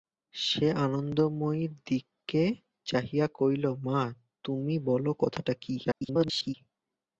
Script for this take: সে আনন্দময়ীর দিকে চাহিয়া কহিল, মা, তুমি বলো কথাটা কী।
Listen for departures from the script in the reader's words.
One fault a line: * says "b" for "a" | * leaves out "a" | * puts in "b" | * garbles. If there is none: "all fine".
* garbles